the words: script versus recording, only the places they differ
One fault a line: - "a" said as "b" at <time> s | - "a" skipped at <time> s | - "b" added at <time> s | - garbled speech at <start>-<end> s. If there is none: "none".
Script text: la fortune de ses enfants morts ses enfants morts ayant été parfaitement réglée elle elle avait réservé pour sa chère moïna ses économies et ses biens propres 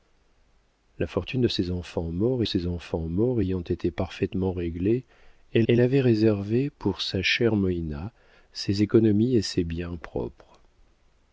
none